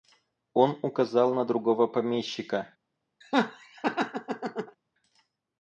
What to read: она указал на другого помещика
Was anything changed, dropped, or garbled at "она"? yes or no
yes